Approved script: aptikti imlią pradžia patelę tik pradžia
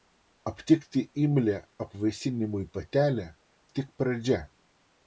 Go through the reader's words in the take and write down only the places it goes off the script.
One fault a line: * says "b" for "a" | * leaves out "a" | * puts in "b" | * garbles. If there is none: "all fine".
* says "apvaisinimui" for "pradžia"